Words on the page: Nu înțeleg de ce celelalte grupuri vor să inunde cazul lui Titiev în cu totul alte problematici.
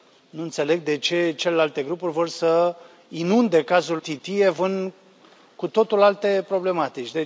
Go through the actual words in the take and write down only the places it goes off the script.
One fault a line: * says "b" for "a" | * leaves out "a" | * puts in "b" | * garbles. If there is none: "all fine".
* leaves out "lui"